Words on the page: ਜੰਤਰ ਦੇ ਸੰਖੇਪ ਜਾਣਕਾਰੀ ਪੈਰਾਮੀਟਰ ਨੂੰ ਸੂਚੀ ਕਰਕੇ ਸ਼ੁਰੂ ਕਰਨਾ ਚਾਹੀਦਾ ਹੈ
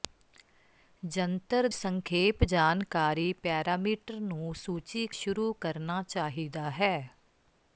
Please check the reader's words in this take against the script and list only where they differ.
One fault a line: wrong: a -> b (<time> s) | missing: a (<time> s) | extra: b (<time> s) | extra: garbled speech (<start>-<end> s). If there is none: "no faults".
missing: ਦੇ (1.7 s)
missing: ਕਰਕੇ (5.1 s)